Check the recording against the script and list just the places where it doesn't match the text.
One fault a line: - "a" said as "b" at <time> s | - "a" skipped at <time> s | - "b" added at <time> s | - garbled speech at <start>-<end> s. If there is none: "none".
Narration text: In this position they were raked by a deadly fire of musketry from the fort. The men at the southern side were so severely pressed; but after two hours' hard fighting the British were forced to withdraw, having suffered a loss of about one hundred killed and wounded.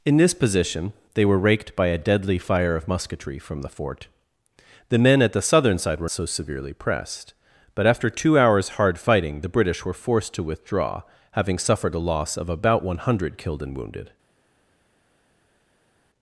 none